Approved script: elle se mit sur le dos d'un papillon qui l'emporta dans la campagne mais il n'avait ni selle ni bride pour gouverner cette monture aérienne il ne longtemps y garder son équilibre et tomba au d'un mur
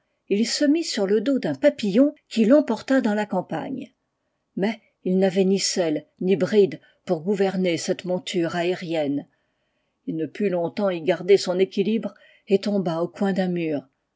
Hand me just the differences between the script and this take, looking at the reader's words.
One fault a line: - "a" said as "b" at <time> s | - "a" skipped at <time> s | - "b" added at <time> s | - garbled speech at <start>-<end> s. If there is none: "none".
- "elle" said as "il" at 0.3 s
- "put" added at 10.3 s
- "coin" added at 13.1 s